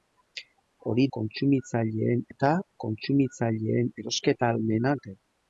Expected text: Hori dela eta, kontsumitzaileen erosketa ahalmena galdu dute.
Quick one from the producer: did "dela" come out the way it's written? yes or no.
no